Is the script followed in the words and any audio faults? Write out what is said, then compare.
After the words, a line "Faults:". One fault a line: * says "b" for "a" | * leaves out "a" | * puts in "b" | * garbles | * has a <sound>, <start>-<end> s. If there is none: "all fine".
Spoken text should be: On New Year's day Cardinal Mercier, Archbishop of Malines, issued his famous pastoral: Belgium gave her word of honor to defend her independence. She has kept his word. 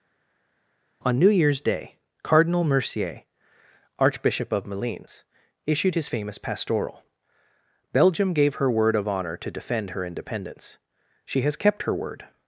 On New Year's day Cardinal Mercier, Archbishop of Malines, issued his famous pastoral: Belgium gave her word of honor to defend her independence. She has kept her word.
Faults:
* says "her" for "his"